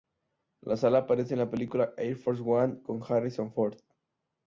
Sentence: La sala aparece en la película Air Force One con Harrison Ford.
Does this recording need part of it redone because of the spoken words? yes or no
no